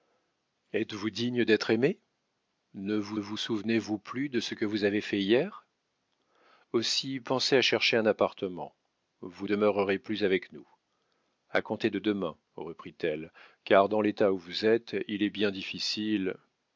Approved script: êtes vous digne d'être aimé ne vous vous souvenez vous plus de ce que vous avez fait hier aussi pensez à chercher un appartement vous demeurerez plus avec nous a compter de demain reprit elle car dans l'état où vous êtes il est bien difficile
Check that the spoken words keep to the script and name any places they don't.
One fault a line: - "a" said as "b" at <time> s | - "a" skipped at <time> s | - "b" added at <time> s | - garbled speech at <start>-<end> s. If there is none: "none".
none